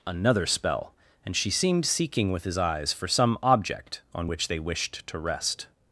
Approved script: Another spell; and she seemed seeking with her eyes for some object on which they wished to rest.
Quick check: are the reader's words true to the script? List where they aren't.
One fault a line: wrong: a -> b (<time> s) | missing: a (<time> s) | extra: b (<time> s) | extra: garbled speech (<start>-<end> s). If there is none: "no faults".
wrong: her -> his (2.4 s)